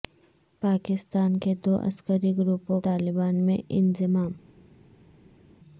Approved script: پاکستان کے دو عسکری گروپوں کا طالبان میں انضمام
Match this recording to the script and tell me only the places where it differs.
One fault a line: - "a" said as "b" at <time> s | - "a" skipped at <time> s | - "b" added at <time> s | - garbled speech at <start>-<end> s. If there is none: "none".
- "کا" skipped at 2.8 s